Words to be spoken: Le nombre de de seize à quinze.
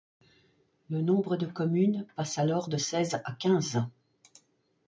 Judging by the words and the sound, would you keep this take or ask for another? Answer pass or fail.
fail